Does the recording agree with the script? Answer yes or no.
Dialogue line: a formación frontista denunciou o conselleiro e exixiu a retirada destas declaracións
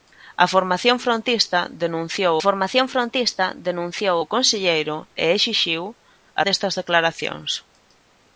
no